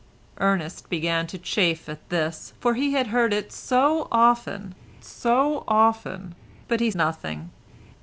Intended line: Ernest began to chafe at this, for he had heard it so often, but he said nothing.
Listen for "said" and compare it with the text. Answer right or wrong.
wrong